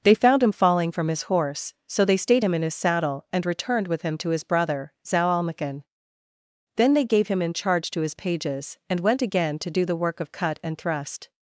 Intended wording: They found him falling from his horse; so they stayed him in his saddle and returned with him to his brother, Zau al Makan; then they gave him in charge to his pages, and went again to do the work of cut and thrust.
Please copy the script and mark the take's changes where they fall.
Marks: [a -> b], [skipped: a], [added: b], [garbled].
They found him falling from his horse; so they stayed him in his saddle and returned with him to his brother, Zau al Makan; then they gave him in charge to his pages, and went again to do the work of cut and thrust.